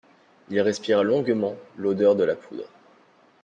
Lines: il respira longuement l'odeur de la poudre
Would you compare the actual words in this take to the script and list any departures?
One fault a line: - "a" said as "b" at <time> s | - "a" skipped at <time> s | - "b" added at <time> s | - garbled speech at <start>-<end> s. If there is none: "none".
none